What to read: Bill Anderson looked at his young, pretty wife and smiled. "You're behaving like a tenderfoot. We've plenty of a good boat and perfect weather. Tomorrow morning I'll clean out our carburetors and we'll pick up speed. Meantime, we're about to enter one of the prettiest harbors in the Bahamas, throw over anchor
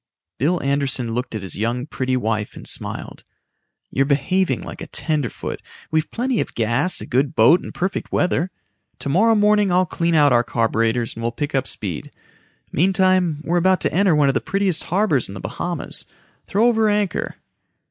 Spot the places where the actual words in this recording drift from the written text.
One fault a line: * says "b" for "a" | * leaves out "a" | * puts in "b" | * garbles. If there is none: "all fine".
* puts in "gas"